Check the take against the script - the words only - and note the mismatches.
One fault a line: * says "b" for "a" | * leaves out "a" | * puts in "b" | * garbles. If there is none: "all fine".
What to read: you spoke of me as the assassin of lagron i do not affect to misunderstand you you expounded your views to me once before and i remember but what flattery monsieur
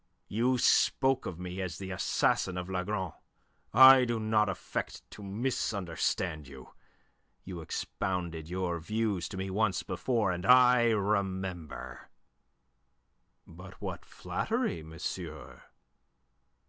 all fine